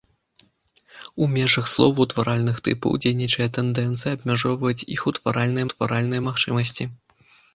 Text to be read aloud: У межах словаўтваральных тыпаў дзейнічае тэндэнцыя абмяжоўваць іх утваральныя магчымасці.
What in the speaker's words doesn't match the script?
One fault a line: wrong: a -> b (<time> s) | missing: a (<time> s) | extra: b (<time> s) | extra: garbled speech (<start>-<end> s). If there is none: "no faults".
extra: утваральныя (5.7 s)